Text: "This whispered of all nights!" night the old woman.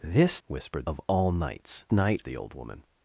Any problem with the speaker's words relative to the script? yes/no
no